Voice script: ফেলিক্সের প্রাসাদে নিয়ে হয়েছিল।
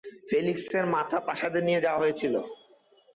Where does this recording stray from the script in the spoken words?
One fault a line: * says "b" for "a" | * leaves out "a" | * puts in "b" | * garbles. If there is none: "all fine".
* puts in "মাথা"
* puts in "যাওয়া"